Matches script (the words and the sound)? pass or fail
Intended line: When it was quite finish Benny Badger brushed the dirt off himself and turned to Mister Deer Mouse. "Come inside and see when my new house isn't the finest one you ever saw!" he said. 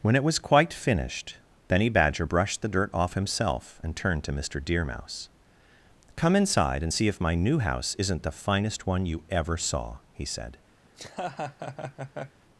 fail